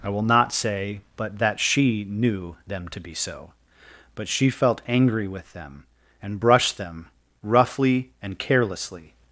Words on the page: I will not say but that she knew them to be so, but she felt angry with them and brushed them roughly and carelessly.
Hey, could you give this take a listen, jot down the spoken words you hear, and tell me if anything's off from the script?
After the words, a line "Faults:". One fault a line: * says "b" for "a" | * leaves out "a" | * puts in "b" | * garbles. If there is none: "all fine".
I will not say but that she knew them to be so, but she felt angry with them and brushed them roughly and carelessly.
Faults:
all fine